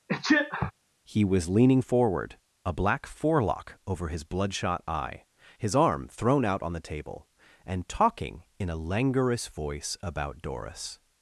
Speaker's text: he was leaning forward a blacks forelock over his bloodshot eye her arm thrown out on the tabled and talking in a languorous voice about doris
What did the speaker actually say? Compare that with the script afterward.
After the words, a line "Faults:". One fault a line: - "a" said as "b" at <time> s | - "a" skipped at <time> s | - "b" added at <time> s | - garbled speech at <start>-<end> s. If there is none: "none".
he was leaning forward a black forelock over his bloodshot eye his arm thrown out on the table and talking in a languorous voice about doris
Faults:
- "blacks" said as "black" at 2.7 s
- "her" said as "his" at 5.6 s
- "tabled" said as "table" at 6.9 s